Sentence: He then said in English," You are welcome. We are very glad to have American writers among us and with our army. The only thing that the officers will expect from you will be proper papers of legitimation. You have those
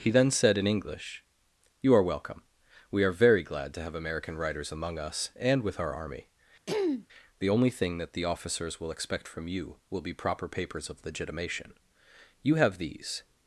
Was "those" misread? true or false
true